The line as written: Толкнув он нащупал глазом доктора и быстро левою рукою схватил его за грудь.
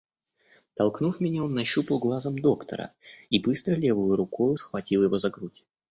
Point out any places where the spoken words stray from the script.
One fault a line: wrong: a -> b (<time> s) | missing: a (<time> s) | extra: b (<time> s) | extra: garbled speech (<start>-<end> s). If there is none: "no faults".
extra: меня (1.2 s)